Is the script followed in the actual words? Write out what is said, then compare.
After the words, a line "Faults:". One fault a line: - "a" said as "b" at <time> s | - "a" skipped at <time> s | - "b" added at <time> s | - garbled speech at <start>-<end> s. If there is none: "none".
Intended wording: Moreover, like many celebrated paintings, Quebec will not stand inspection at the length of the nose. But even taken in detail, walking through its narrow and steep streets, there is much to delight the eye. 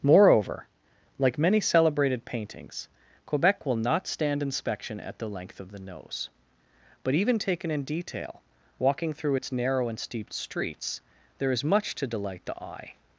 Moreover, like many celebrated paintings, Quebec will not stand inspection at the length of the nose. But even taken in detail, walking through its narrow and steep streets, there is much to delight the eye.
Faults:
none